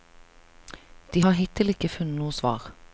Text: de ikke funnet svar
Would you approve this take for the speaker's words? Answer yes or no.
no